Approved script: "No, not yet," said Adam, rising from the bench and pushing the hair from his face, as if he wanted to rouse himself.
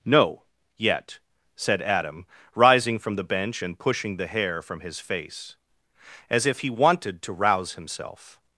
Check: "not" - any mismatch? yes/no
yes